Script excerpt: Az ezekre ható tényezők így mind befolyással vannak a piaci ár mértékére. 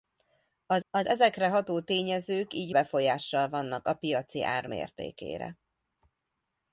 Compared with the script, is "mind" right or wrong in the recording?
wrong